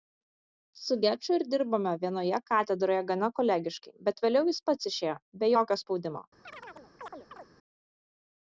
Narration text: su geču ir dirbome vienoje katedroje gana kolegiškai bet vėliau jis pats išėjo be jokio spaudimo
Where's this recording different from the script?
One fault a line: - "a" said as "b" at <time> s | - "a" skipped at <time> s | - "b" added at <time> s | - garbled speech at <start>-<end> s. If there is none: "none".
none